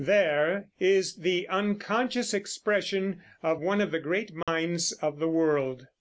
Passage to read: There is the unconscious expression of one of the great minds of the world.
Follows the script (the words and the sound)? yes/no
no